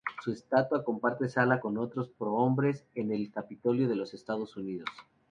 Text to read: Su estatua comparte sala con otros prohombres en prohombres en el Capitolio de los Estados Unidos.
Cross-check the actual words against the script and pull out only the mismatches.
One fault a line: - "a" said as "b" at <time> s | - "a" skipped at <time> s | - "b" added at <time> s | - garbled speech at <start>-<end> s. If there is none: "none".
- "prohombres en" skipped at 3.1 s